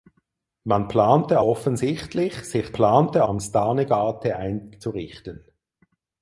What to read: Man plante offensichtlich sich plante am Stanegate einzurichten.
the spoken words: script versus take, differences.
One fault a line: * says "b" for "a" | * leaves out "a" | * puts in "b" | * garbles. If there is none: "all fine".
all fine